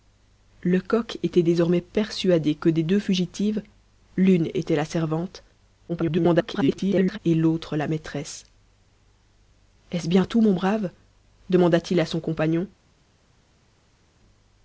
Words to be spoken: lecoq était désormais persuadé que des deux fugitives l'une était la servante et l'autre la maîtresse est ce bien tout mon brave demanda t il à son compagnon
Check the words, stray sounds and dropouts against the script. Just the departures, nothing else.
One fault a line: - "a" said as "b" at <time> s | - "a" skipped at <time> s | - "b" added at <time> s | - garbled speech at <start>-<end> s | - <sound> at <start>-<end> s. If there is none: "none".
- garbled speech at 5.9-7.2 s